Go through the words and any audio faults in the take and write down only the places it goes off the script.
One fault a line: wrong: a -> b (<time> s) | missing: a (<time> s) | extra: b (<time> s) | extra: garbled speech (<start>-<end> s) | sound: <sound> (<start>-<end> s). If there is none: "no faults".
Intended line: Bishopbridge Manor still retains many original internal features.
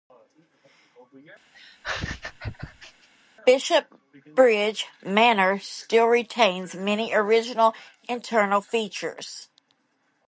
sound: laugh (1.5-3.1 s)